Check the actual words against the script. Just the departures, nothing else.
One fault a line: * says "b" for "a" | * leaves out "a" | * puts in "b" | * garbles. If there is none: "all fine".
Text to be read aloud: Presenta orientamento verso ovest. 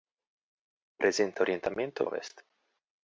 * leaves out "verso"